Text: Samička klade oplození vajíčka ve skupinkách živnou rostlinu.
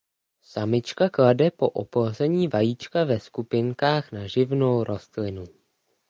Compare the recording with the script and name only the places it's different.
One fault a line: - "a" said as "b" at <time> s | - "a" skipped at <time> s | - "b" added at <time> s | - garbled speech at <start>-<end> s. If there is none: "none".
- "po" added at 1.5 s
- "na" added at 4.1 s